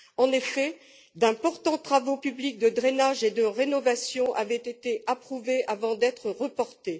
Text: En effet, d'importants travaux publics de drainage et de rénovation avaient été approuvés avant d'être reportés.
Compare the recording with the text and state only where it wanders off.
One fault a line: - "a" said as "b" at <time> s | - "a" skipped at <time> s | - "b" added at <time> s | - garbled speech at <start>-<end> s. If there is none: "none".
none